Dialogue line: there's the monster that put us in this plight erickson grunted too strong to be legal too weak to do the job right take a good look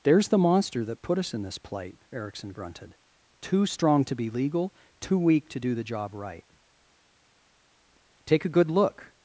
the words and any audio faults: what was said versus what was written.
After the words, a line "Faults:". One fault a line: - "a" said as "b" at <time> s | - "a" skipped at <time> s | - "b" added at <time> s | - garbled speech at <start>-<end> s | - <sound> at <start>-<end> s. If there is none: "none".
there's the monster that put us in this plight erickson grunted too strong to be legal too weak to do the job right take a good look
Faults:
none